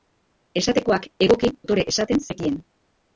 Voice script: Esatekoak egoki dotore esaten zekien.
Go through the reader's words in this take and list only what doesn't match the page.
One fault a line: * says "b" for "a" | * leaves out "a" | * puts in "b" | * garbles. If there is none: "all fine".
all fine